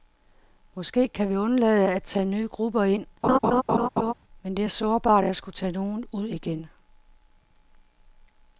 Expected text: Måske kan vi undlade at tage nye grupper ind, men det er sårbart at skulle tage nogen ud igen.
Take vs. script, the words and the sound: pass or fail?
fail